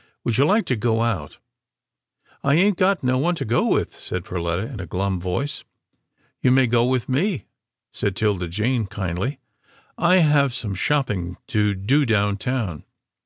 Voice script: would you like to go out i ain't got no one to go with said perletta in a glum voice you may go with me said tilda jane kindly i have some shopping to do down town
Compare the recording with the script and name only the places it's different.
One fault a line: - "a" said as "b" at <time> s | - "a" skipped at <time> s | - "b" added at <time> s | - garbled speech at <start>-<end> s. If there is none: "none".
none